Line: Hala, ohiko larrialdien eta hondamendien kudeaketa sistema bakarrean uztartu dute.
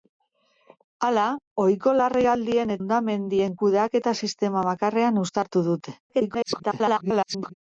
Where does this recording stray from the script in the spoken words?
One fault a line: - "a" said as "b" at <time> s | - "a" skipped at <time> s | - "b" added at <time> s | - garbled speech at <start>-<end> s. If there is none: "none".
- "eta" skipped at 2.8 s
- garbled speech at 6.1-7.5 s